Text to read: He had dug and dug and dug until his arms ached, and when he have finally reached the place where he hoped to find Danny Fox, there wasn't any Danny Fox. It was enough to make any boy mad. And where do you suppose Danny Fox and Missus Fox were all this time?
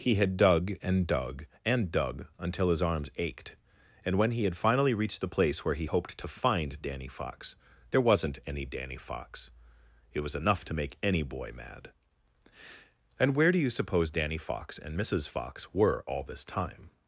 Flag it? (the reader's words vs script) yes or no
yes